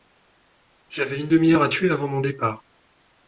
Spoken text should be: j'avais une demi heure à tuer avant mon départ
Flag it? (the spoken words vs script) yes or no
no